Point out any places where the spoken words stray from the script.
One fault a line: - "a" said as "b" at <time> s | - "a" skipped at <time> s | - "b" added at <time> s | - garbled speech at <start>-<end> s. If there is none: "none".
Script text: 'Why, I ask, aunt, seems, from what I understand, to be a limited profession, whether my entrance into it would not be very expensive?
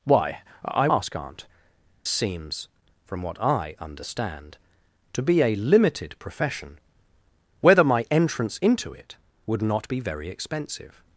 none